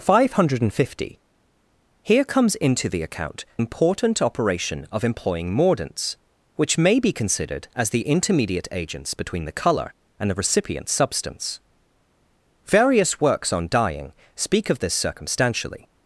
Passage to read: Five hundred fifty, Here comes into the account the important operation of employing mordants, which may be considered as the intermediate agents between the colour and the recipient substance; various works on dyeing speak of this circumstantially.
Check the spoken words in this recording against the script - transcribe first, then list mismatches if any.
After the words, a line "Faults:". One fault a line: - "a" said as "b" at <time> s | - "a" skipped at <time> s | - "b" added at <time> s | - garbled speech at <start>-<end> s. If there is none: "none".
Five hundred fifty, Here comes into the account important operation of employing mordants, which may be considered as the intermediate agents between the colour and the recipient substance; various works on dyeing speak of this circumstantially.
Faults:
- "the" skipped at 3.4 s